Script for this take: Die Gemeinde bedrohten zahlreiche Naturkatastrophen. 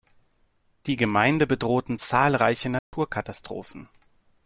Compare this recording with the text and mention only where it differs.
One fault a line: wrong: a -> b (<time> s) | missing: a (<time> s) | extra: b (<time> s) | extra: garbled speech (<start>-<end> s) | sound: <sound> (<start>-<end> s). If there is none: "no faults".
sound: dropout (2.8-2.9 s)